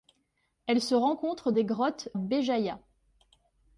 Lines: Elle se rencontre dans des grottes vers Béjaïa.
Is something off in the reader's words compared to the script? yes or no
yes